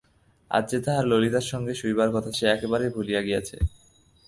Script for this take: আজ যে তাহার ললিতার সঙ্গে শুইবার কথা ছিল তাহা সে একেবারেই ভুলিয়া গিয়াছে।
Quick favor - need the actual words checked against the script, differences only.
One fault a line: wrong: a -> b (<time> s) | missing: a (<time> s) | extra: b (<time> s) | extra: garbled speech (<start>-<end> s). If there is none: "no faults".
missing: ছিল তাহা (2.3 s)